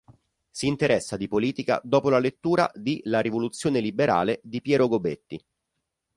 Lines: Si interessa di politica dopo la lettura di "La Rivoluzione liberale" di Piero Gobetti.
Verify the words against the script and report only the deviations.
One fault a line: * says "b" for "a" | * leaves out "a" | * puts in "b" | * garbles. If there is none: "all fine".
all fine